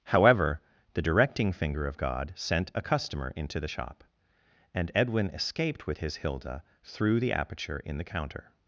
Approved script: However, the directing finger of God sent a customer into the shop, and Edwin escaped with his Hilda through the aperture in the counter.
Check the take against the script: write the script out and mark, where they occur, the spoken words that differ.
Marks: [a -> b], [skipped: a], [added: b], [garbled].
However, the directing finger of God sent a customer into the shop, and Edwin escaped with his Hilda through the aperture in the counter.